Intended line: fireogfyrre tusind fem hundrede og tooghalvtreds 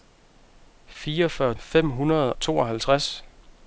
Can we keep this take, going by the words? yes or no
no